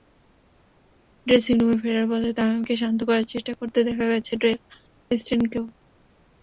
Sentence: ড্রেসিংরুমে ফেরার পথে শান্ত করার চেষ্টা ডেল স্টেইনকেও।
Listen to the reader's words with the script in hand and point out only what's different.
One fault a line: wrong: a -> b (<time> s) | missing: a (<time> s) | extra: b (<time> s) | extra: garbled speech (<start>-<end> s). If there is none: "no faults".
extra: তামিমকে (2.4 s)
extra: করতে দেখা গেছে (3.6 s)